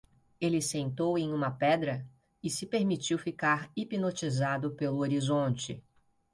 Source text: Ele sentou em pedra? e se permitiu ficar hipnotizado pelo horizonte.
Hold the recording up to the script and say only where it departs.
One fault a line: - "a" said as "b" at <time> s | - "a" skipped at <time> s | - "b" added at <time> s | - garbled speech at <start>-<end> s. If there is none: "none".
- "uma" added at 1.3 s